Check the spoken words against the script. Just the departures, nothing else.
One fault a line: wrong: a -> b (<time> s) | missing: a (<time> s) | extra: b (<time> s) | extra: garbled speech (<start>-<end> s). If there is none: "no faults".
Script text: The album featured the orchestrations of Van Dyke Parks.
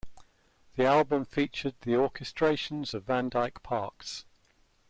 no faults